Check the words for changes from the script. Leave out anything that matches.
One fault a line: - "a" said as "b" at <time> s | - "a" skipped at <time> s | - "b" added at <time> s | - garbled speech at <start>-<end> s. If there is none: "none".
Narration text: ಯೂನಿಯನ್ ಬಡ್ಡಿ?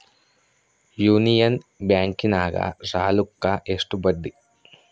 - "ಬ್ಯಾಂಕಿನಾಗ ಸಾಲುಕ್ಕ ಎಷ್ಟು" added at 1.9 s